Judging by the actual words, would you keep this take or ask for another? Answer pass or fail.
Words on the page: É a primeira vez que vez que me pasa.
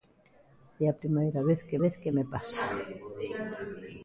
pass